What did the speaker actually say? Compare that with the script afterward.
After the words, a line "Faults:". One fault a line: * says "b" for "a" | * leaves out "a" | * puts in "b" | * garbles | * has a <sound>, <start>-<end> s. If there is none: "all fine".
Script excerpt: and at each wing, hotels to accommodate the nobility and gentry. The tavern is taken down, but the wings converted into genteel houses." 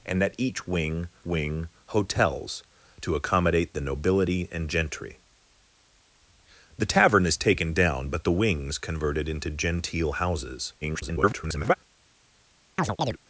and at each wing wing, hotels to accommodate the nobility and gentry. The tavern is taken down, but the wings converted into genteel houses." [garbled]
Faults:
* puts in "wing"
* garbles
* has a chirp, 12.8-13.2 s